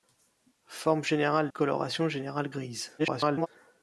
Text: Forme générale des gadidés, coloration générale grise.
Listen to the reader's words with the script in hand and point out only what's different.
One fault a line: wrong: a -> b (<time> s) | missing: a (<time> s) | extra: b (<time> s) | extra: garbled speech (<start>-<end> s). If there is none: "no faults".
missing: des gadidés (1.5 s)
extra: garbled speech (3.0-3.5 s)